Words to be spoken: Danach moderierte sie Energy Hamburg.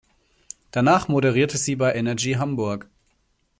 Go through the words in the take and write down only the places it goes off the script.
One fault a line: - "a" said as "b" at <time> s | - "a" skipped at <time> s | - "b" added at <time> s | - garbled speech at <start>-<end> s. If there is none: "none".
- "bei" added at 1.8 s